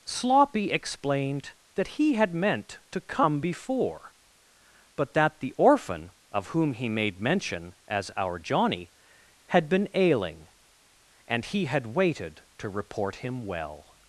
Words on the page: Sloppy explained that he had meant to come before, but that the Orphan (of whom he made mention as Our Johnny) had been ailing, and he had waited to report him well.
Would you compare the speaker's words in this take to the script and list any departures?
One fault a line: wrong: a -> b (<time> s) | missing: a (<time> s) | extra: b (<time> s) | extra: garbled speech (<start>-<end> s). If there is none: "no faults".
no faults